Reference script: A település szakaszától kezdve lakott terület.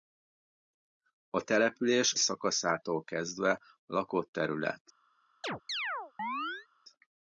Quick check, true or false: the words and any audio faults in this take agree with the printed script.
false